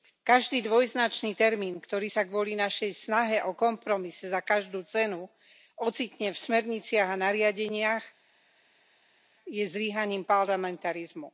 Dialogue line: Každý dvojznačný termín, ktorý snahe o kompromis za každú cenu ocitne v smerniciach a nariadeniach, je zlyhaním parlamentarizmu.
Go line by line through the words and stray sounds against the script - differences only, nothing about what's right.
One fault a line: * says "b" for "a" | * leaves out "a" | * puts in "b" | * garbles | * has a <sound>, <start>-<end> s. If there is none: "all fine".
* puts in "sa kvôli našej"